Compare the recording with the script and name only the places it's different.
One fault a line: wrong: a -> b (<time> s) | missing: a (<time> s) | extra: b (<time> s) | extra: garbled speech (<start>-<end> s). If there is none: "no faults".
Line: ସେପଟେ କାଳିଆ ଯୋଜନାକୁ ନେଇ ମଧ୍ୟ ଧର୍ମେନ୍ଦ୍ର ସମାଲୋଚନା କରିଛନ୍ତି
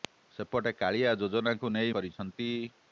missing: ମଧ୍ୟ ଧର୍ମେନ୍ଦ୍ର ସମାଲୋଚନା (1.9 s)